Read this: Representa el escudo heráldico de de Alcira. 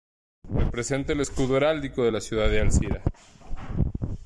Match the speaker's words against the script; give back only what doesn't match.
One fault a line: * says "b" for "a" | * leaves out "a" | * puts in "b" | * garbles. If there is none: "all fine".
* puts in "la ciudad"